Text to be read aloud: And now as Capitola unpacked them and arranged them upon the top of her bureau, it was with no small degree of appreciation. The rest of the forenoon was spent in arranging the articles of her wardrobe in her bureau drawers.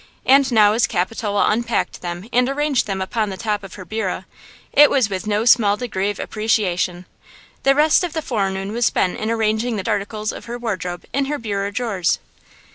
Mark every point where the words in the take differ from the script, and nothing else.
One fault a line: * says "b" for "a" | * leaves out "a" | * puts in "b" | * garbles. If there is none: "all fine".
all fine